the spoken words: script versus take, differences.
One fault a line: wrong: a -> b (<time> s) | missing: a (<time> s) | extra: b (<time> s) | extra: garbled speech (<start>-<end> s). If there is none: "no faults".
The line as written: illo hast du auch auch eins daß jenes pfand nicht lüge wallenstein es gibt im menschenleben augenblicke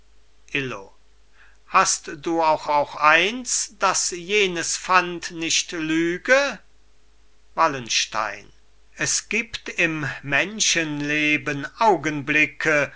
no faults